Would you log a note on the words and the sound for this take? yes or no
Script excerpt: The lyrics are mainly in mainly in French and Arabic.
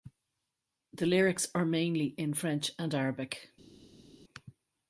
yes